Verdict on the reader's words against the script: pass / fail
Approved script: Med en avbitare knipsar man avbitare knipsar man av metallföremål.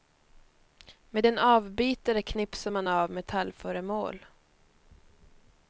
fail